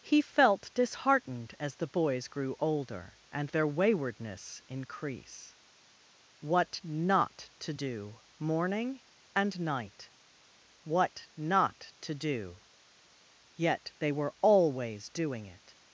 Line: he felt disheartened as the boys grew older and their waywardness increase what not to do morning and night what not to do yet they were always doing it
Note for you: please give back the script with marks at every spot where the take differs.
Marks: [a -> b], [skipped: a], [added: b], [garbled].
he felt disheartened as the boys grew older and their waywardness increase what not to do morning and night what not to do yet they were always doing it